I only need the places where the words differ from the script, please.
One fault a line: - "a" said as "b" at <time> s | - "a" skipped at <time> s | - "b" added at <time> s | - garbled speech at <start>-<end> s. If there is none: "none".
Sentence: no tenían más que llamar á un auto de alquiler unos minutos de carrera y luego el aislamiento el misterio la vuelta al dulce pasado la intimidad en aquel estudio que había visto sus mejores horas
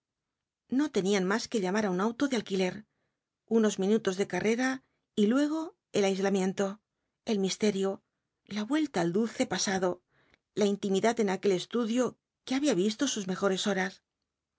none